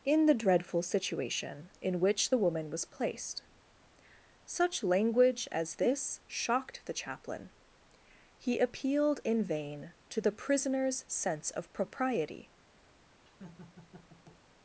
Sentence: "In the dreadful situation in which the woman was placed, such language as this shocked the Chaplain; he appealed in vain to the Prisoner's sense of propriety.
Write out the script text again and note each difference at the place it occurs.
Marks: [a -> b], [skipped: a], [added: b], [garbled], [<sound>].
"In the dreadful situation in which the woman was placed, such language as this shocked the Chaplain; he appealed in vain to the Prisoner's sense of propriety. [laugh]